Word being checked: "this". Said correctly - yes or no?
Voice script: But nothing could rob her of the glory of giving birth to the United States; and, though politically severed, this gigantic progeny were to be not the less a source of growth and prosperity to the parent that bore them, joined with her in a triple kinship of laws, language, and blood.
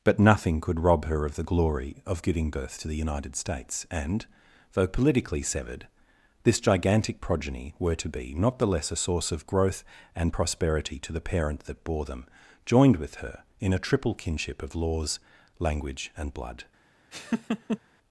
yes